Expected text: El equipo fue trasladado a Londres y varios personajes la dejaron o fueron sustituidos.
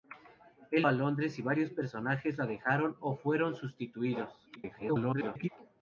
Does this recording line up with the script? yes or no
no